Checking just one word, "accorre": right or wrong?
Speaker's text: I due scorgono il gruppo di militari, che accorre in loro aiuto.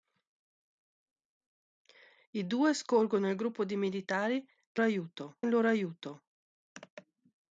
wrong